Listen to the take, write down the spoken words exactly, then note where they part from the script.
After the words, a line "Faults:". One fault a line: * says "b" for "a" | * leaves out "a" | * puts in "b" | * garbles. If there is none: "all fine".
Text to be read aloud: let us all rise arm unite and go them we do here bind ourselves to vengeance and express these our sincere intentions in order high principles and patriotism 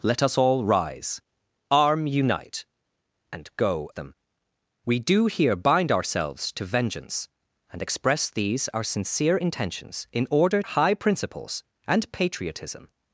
let us all rise arm unite and go them we do here bind ourselves to vengeance and express these our sincere intentions in order high principles and patriotism
Faults:
all fine